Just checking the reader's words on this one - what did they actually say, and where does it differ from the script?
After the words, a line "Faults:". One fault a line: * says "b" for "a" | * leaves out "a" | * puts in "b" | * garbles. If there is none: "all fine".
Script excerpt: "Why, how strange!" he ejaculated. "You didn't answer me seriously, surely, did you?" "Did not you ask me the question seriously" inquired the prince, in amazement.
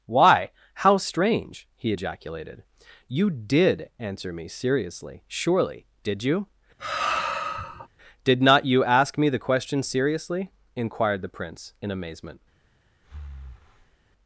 "Why, how strange!" he ejaculated. "You did answer me seriously, surely, did you?" "Did not you ask me the question seriously" inquired the prince, in amazement.
Faults:
* says "did" for "didn't"